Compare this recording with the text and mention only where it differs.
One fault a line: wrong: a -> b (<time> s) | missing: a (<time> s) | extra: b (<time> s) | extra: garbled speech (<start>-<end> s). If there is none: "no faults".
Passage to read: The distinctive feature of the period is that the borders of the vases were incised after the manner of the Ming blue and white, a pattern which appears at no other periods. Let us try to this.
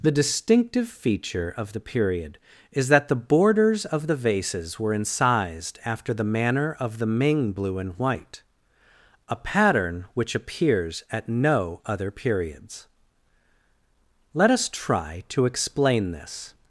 extra: explain (15.4 s)